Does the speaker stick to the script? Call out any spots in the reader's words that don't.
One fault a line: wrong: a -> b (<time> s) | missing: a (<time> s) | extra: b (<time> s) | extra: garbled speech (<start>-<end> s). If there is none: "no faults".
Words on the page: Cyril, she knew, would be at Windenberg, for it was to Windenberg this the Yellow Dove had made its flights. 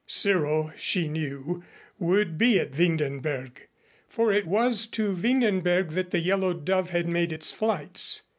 wrong: this -> that (5.9 s)